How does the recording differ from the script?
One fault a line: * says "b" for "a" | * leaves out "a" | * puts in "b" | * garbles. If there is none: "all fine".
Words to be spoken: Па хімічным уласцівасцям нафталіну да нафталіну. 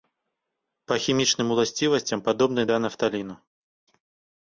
* says "падобны" for "нафталіну"